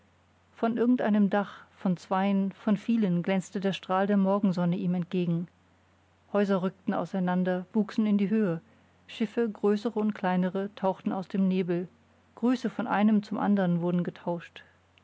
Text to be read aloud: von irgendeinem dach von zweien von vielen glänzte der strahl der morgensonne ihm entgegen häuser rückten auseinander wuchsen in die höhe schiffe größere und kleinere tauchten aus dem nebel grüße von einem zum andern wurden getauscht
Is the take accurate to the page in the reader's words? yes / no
yes